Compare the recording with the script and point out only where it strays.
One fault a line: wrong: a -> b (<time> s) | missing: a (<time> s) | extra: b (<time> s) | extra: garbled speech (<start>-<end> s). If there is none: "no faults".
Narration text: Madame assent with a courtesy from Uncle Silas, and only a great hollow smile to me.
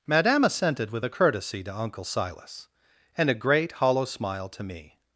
wrong: assent -> assented (0.4 s)
wrong: from -> to (1.6 s)
missing: only (3.3 s)